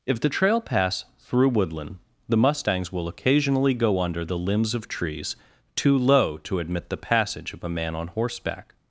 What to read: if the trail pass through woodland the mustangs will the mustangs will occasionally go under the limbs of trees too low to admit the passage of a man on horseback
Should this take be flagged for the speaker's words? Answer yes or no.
yes